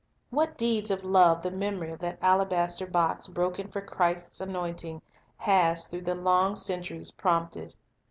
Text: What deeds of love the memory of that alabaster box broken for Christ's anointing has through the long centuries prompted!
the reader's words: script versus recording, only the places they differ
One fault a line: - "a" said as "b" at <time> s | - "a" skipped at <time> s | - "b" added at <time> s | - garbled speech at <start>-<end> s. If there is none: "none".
none